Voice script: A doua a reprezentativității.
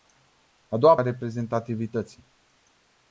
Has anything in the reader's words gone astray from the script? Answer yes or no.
no